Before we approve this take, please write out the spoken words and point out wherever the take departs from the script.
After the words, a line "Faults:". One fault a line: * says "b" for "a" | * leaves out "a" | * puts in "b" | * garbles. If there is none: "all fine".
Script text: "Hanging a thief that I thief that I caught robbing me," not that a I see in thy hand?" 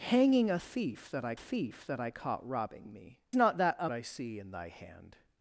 "Hanging a thief that I thief that I caught robbing me," not that a I see in thy hand?"
Faults:
all fine